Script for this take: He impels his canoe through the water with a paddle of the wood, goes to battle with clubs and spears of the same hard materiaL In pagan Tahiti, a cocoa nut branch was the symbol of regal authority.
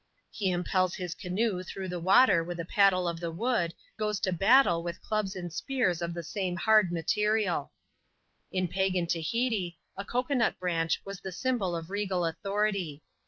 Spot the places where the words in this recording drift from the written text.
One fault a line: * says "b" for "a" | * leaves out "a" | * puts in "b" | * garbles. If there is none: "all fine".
all fine